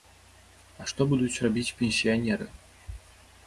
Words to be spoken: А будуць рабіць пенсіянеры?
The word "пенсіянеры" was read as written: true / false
true